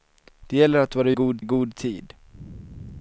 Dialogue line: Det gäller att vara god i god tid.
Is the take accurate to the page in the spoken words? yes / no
yes